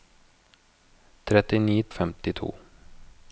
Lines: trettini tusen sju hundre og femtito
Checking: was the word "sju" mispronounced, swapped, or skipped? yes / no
yes